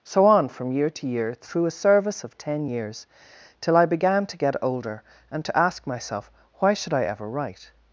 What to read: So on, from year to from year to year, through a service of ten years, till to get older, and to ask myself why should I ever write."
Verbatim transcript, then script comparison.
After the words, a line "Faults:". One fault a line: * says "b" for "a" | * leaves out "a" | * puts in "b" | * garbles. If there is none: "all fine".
So on, from year to year, through a service of ten years, till I began to get older, and to ask myself why should I ever write."
Faults:
* leaves out "from"
* leaves out "to year"
* puts in "I began"